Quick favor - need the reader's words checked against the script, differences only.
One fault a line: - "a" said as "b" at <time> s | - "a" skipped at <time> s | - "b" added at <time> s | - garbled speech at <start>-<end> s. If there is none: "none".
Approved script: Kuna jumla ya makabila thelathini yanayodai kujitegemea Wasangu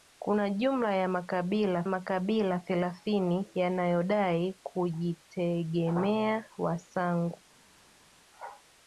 - "makabila" added at 1.9 s